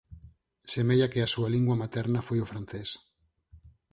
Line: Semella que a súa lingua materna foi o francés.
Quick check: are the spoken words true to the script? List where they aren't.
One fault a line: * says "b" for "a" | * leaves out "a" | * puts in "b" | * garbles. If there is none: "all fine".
all fine